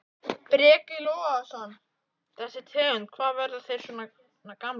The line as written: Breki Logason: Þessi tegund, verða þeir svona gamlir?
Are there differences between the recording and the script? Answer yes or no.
yes